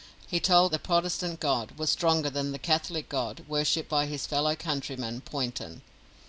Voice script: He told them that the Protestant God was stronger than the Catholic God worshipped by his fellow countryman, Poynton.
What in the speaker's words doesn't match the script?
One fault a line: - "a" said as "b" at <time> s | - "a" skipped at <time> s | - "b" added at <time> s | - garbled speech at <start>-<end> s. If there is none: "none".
- "them that" skipped at 0.7 s